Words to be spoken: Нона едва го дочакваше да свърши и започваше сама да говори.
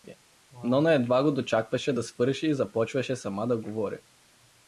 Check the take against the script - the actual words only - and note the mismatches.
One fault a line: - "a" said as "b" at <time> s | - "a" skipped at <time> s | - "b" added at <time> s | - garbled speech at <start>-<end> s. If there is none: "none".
none